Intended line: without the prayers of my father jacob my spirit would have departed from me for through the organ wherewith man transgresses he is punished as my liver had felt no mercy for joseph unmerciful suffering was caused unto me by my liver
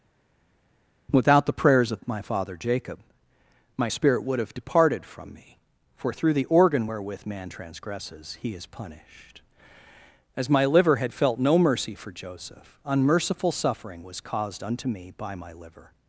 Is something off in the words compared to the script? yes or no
no